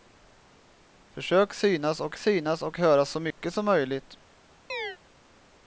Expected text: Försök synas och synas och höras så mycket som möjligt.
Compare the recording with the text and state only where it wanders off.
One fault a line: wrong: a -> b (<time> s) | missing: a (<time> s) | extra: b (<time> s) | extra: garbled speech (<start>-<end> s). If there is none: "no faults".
no faults